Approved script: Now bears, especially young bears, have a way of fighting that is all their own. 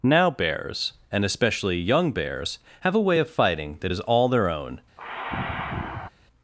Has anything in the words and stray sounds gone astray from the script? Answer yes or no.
yes